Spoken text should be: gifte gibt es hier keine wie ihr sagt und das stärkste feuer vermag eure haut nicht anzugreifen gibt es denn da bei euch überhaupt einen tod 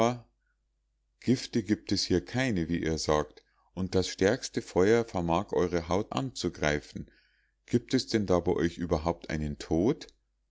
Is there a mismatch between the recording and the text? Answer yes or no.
yes